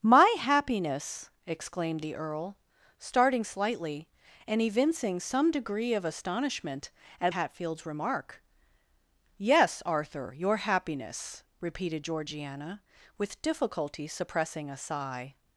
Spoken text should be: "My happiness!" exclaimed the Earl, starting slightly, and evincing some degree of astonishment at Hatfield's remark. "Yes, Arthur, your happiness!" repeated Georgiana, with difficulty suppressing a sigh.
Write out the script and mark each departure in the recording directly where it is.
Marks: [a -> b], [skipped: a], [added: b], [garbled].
"My happiness!" exclaimed the Earl, starting slightly, and evincing some degree of astonishment at Hatfield's remark. "Yes, Arthur, your happiness!" repeated Georgiana, with difficulty suppressing a sigh.